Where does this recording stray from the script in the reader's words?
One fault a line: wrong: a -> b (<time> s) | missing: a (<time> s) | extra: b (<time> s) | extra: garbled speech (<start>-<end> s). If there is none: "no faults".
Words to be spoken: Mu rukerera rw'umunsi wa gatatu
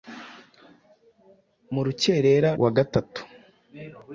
missing: rw'umunsi (2.5 s)